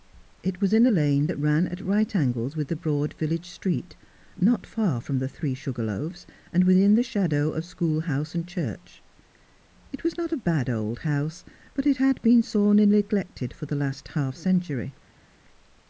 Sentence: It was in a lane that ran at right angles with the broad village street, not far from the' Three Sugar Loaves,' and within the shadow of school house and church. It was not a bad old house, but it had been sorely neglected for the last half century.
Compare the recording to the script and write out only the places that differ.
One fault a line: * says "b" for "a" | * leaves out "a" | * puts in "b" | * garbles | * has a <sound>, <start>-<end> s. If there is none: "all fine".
all fine